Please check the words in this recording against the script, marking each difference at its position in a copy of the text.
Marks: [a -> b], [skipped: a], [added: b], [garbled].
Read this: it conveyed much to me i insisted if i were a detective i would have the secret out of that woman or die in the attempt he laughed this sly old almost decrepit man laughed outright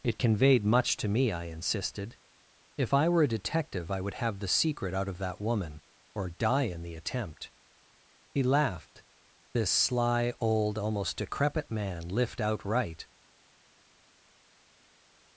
it conveyed much to me i insisted if i were a detective i would have the secret out of that woman or die in the attempt he laughed this sly old almost decrepit man [laughed -> lift] outright